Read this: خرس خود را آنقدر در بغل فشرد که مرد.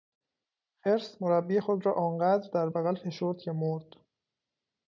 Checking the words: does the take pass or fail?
fail